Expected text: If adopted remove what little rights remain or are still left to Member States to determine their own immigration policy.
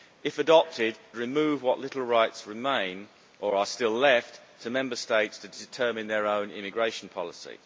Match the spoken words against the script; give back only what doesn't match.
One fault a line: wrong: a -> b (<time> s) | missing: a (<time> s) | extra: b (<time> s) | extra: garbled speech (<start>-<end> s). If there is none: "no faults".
no faults